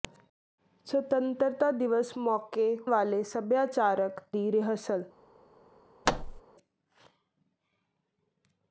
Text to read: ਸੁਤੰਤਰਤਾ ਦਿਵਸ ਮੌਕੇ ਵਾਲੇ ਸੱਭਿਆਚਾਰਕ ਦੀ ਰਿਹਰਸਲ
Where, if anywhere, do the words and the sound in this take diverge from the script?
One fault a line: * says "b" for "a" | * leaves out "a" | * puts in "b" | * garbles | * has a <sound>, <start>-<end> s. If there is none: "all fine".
* has a thud, 6.1-6.4 s